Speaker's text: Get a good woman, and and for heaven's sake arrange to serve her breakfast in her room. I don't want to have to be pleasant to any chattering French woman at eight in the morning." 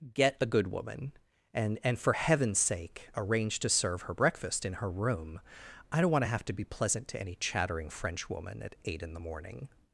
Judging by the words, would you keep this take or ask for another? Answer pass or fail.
pass